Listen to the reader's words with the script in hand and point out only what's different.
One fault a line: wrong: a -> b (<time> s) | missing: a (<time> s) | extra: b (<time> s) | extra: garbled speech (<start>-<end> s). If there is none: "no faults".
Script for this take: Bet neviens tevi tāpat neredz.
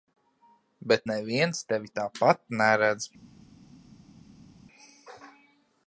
no faults